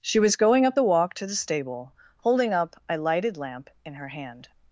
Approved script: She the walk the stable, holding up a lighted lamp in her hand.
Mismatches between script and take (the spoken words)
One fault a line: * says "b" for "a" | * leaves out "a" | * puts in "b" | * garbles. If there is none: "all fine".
* puts in "was going up"
* puts in "to"